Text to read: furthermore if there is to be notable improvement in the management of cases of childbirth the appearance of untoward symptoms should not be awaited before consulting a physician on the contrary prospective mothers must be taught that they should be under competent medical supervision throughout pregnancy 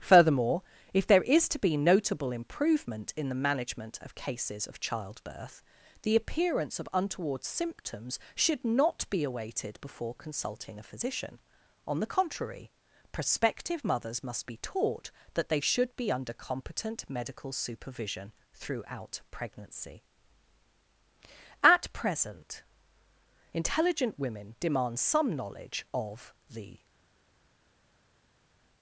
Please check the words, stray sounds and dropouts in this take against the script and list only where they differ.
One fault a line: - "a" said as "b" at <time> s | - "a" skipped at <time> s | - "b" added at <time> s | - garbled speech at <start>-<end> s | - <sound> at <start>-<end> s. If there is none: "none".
- "at present intelligent women demand some knowledge of the" added at 21.6 s